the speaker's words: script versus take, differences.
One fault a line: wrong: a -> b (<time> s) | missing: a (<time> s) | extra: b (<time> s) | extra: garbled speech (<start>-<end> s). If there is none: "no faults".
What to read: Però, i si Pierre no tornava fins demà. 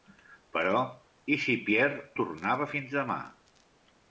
missing: no (2.0 s)